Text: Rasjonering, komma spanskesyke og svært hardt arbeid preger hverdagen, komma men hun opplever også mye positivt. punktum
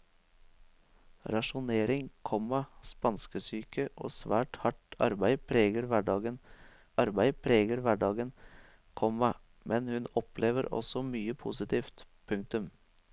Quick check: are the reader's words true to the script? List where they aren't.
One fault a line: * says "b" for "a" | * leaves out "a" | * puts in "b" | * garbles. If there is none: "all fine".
* puts in "arbeid preger hverdagen"